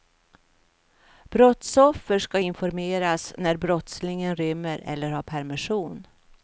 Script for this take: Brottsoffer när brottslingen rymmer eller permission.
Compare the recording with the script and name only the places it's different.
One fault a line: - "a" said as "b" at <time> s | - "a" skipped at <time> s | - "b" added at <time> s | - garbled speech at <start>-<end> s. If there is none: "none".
- "ska informeras" added at 2.2 s
- "har" added at 5.1 s